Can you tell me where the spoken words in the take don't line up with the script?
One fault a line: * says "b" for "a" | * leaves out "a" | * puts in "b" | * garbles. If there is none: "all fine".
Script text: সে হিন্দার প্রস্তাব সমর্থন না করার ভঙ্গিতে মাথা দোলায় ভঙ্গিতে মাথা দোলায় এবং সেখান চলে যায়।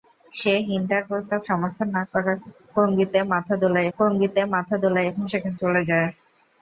all fine